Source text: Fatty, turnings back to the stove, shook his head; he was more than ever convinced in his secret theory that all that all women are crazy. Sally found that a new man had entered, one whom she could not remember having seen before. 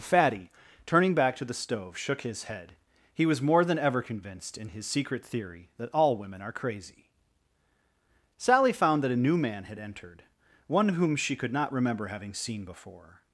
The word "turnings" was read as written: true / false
false